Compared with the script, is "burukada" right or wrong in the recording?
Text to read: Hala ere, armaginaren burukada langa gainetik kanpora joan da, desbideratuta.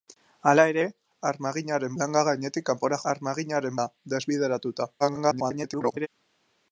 wrong